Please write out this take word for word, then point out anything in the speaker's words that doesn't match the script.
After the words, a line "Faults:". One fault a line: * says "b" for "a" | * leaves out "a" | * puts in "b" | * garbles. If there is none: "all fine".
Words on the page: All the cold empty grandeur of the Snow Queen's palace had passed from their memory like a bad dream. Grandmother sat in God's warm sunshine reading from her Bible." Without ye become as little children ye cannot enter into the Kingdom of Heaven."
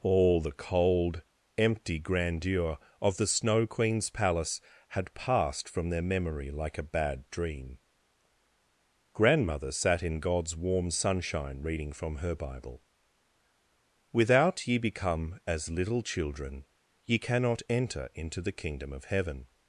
All the cold empty grandeur of the Snow Queen's palace had passed from their memory like a bad dream. Grandmother sat in God's warm sunshine reading from her Bible." Without ye become as little children ye cannot enter into the Kingdom of Heaven."
Faults:
all fine